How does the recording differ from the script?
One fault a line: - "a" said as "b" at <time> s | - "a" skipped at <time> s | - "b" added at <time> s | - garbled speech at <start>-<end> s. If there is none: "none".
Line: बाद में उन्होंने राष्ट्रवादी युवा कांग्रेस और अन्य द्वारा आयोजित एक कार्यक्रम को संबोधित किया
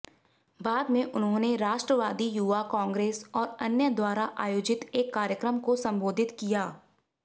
none